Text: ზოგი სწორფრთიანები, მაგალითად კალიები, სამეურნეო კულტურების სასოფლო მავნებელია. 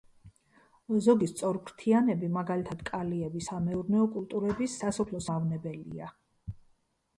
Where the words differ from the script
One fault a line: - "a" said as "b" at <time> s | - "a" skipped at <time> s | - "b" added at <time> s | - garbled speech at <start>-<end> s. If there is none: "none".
none